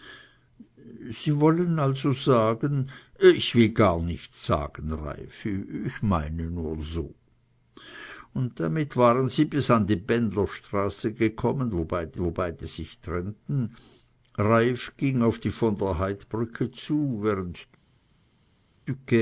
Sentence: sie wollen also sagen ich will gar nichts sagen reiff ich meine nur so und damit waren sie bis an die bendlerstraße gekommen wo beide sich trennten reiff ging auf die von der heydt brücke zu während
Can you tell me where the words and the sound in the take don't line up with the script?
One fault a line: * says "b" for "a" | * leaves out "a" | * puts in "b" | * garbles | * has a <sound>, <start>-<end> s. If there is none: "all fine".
* puts in "wo beide"